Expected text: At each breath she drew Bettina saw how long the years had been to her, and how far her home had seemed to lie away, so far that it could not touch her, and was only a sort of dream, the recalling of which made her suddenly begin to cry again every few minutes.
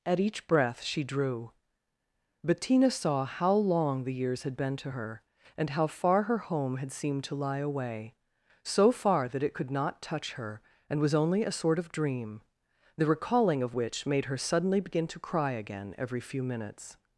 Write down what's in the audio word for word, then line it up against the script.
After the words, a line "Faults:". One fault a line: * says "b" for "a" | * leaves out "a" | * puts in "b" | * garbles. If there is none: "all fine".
At each breath she drew Bettina saw how long the years had been to her, and how far her home had seemed to lie away, so far that it could not touch her, and was only a sort of dream, the recalling of which made her suddenly begin to cry again every few minutes.
Faults:
all fine